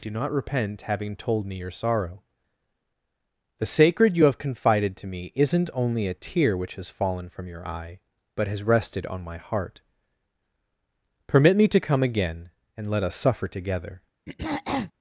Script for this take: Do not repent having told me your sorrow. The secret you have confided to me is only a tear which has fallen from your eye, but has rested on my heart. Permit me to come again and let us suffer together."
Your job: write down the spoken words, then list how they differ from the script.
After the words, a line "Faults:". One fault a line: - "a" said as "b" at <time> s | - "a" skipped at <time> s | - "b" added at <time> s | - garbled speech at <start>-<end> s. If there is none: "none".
Do not repent having told me your sorrow. The sacred you have confided to me isn't only a tear which has fallen from your eye, but has rested on my heart. Permit me to come again and let us suffer together."
Faults:
- "secret" said as "sacred" at 3.7 s
- "is" said as "isn't" at 5.3 s